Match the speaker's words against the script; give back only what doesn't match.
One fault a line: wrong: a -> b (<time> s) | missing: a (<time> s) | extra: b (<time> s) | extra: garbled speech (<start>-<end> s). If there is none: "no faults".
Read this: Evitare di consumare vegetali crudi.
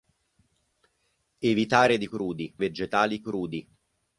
wrong: consumare -> crudi (2.1 s)